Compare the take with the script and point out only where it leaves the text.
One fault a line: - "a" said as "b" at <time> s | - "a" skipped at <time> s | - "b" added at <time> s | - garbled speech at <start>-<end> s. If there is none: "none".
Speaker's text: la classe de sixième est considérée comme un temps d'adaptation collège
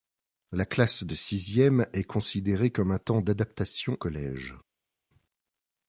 none